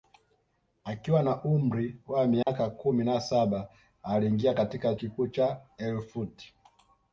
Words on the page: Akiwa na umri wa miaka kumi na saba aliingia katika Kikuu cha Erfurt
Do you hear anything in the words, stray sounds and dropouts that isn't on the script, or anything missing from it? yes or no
yes